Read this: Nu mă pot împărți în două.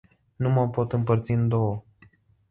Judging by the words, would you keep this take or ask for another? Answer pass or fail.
pass